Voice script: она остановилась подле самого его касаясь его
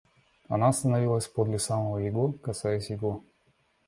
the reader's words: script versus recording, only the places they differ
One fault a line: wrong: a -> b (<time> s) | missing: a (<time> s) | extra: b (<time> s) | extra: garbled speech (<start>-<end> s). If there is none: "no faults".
no faults